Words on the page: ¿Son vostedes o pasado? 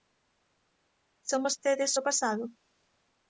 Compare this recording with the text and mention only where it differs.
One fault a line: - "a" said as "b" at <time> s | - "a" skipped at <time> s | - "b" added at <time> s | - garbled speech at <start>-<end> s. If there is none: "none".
none